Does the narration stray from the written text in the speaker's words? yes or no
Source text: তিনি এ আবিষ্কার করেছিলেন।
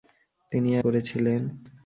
yes